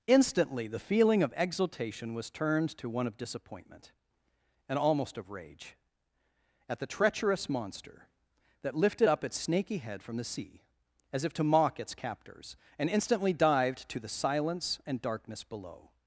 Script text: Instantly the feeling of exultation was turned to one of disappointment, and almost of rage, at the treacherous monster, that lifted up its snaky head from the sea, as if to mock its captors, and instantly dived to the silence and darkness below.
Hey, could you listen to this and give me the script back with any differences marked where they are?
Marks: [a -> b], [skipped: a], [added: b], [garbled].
Instantly the feeling of exultation was turned to one of disappointment, and almost of rage, at the treacherous monster, that lifted up its snaky head from the sea, as if to mock its captors, and instantly dived to the silence and darkness below.